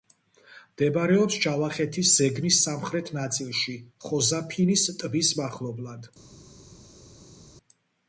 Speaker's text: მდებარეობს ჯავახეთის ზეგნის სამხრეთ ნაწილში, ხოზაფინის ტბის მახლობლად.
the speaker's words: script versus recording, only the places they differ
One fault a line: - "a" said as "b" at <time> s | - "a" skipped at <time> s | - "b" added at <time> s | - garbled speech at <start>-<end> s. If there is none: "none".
none